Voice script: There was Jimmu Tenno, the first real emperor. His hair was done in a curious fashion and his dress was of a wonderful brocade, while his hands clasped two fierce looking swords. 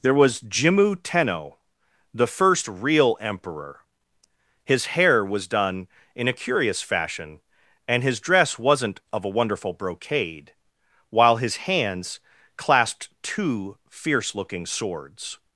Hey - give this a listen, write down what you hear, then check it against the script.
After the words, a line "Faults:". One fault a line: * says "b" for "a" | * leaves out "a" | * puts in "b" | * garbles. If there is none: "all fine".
There was Jimmu Tenno, the first real emperor. His hair was done in a curious fashion and his dress wasn't of a wonderful brocade, while his hands clasped two fierce looking swords.
Faults:
* says "wasn't" for "was"